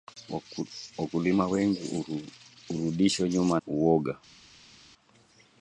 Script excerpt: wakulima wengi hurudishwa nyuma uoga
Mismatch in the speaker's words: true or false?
false